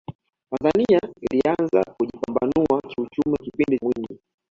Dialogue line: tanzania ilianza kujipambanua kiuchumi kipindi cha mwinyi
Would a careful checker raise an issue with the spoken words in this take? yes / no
yes